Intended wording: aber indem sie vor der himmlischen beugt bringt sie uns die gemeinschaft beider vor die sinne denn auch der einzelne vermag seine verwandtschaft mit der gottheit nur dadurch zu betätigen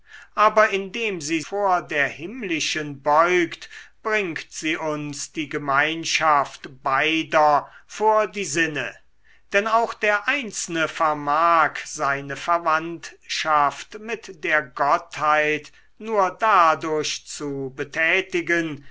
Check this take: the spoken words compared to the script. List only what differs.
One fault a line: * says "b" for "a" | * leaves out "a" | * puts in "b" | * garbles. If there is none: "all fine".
all fine